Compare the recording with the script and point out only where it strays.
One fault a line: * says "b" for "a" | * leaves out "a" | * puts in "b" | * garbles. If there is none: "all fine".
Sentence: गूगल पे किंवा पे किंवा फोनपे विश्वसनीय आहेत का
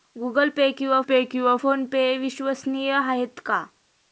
all fine